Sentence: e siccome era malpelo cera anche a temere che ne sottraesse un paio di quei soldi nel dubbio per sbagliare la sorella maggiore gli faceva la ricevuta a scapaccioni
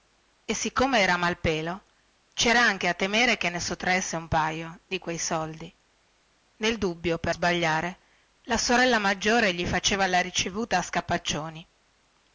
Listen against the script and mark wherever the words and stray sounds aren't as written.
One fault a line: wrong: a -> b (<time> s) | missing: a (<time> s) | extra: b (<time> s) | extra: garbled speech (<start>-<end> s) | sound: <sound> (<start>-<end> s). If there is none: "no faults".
no faults